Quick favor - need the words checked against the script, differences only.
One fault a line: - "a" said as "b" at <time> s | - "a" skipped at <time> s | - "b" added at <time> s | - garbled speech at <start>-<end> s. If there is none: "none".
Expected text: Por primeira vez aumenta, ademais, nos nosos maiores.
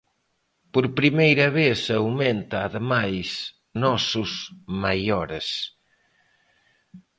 - "nos" skipped at 3.3 s